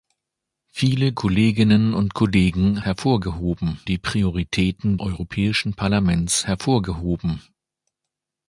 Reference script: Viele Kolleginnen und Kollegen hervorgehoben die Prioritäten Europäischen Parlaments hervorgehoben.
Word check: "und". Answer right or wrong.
right